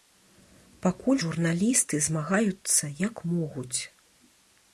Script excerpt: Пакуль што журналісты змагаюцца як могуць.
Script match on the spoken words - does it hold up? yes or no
no